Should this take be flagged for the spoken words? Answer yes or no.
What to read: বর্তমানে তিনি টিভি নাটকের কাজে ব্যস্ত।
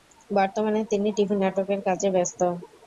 no